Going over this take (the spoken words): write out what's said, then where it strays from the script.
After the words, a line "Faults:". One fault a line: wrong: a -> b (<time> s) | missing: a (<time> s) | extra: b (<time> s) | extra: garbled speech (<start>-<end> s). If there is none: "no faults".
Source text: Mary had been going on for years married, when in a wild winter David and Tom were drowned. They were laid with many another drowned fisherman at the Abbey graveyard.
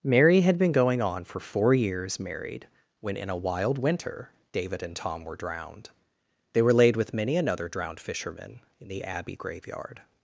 Mary had been going on for four years married, when in a wild winter David and Tom were drowned. They were laid with many another drowned fisherman in the Abbey graveyard.
Faults:
extra: four (1.4 s)
wrong: at -> in (8.8 s)